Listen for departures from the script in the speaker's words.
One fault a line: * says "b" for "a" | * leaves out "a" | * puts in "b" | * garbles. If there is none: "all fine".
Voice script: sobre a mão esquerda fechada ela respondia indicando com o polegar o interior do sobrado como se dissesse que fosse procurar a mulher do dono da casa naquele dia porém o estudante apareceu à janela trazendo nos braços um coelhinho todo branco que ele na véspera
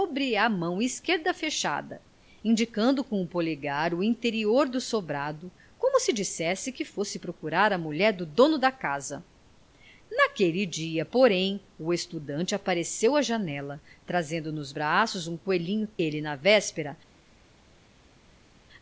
* leaves out "ela respondia"
* leaves out "todo branco que"